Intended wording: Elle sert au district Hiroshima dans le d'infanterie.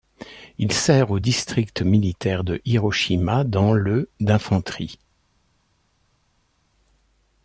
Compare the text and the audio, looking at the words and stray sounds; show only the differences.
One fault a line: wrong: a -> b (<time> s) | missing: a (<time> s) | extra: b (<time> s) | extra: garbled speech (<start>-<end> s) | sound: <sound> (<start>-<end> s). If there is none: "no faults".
wrong: Elle -> Il (0.6 s)
extra: militaire de (1.8 s)